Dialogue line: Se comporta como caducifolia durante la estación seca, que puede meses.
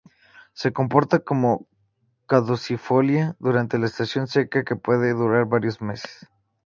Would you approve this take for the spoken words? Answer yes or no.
no